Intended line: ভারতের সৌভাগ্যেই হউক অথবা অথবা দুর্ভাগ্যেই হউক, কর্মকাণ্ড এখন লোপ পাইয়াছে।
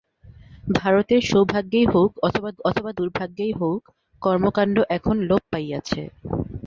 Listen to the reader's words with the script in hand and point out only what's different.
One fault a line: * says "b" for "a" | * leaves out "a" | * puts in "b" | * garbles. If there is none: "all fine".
all fine